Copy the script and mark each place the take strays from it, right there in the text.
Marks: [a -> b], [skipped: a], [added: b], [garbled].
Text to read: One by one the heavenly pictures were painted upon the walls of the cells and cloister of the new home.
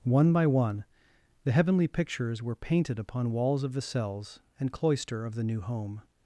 One by one the heavenly pictures were painted upon [skipped: the] walls of the cells and cloister of the new home.